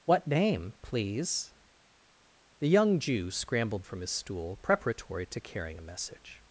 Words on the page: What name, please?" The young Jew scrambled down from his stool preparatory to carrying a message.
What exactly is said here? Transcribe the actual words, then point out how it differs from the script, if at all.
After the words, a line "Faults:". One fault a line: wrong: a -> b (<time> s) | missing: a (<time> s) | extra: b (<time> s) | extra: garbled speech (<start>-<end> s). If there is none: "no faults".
What name, please?" The young Jew scrambled from his stool preparatory to carrying a message.
Faults:
missing: down (3.8 s)